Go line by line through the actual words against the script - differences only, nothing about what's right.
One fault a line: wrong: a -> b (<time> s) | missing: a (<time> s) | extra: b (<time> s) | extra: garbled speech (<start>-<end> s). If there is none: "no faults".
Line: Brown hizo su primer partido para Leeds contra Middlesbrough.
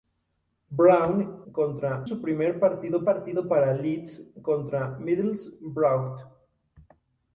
wrong: hizo -> contra (1.5 s)
extra: partido (3.0 s)